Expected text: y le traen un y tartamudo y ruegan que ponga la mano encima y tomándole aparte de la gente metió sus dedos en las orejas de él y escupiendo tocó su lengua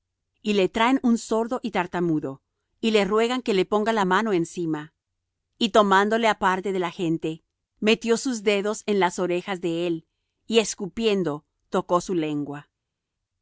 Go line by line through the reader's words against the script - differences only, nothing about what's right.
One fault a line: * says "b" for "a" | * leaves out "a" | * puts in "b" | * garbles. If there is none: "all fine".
* puts in "sordo"
* puts in "le"
* puts in "le"